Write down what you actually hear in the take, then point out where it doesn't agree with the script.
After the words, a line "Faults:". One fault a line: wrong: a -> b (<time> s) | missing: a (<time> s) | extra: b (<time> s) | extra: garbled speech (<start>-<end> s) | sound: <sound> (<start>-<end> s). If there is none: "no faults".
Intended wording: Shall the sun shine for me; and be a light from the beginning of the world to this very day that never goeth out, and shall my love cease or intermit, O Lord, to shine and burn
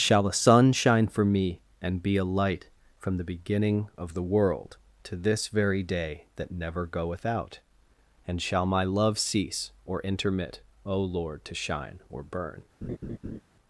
Shall the sun shine for me; and be a light from the beginning of the world to this very day that never goeth out, and shall my love cease or intermit, O Lord, to shine or burn
Faults:
wrong: and -> or (12.1 s)
sound: laugh (12.8-13.4 s)